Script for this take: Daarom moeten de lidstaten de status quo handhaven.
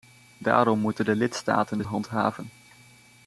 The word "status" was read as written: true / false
false